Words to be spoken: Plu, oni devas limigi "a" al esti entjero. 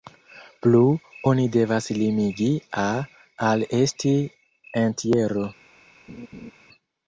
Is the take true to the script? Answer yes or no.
yes